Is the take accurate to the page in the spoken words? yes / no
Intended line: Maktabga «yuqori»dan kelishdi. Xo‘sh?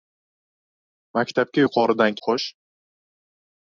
no